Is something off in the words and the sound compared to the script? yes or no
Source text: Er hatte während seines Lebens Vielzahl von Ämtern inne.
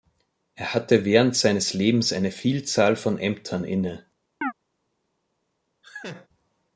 yes